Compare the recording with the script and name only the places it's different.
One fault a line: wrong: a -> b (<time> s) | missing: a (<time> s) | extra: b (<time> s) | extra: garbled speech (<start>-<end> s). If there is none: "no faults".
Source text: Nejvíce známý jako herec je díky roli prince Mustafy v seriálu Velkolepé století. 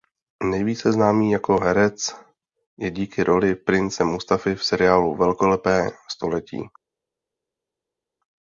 no faults